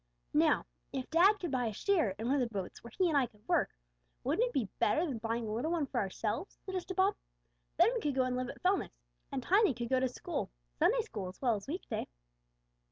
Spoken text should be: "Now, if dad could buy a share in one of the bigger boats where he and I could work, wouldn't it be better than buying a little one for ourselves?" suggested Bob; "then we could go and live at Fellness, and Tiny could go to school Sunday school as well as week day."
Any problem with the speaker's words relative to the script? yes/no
yes